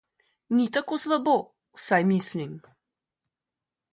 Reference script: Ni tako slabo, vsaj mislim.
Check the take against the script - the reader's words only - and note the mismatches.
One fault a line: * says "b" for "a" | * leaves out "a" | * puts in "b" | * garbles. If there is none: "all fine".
all fine